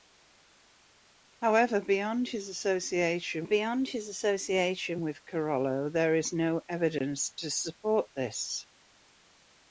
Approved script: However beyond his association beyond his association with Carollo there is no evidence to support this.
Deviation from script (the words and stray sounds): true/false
false